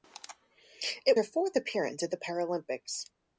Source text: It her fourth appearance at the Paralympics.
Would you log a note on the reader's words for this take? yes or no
no